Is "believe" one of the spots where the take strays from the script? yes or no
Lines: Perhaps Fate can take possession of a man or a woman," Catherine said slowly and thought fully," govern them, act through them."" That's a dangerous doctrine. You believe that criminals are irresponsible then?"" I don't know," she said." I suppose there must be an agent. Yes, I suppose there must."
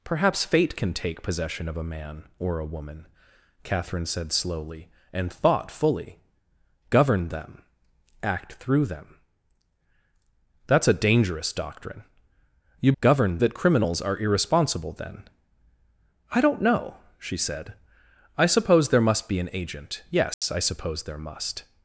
yes